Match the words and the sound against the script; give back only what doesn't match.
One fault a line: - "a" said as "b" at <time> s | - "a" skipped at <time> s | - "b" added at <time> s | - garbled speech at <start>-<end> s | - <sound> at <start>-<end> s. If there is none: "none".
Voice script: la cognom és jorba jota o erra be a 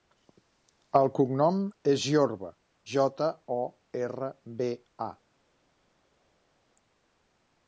- "la" said as "el" at 1.0 s